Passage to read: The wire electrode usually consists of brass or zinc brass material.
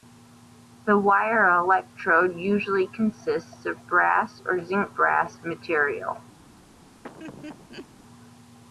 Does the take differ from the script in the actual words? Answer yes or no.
no